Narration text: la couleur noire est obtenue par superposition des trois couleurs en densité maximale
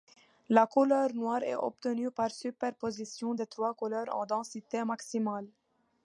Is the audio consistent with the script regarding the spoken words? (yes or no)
yes